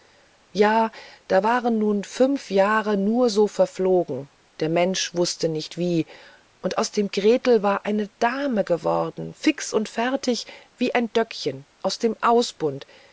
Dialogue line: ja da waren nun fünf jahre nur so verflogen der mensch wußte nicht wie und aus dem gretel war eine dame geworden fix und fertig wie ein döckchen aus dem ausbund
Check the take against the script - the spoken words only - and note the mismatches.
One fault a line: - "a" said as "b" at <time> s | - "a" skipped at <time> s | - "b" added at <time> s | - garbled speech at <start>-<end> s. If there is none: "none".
none